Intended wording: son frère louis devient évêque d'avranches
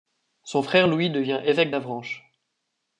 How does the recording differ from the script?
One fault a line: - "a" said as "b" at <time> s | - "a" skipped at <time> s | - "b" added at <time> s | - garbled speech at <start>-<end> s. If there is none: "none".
none